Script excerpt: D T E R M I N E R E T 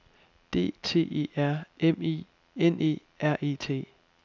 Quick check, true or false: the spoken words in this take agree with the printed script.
true